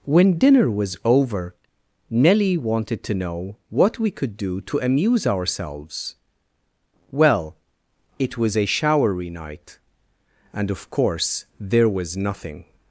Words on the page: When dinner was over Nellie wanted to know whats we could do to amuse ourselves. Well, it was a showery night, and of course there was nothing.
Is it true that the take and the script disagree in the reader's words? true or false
true